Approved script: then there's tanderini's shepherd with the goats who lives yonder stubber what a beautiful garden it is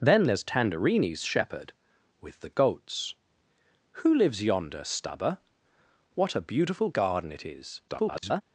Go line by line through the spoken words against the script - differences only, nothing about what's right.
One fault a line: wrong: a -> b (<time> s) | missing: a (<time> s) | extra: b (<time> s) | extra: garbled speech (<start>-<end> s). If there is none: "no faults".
extra: garbled speech (7.9-8.4 s)